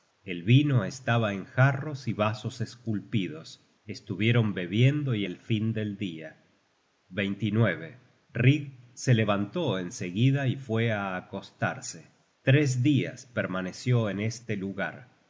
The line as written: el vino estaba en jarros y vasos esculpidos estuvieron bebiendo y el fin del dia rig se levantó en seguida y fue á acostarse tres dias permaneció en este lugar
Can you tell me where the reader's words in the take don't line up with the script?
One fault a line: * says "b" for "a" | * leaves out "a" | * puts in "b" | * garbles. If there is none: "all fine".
all fine